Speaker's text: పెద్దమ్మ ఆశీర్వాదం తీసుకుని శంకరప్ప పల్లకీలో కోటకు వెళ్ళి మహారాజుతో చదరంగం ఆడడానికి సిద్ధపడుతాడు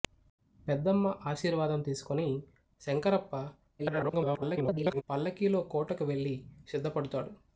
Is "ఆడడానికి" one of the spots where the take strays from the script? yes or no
yes